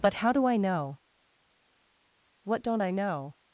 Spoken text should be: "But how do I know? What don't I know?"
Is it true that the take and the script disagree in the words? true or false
false